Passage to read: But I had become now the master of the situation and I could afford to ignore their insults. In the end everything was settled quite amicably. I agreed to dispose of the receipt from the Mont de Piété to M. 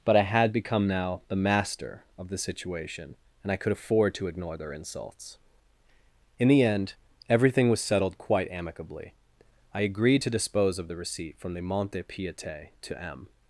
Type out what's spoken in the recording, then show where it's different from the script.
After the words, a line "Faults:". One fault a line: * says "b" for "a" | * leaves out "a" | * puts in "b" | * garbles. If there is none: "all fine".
But I had become now the master of the situation and I could afford to ignore their insults. In the end everything was settled quite amicably. I agreed to dispose of the receipt from the Mont de Piété to M.
Faults:
all fine